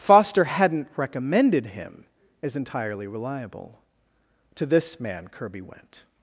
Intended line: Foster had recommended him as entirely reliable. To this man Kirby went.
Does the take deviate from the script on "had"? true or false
true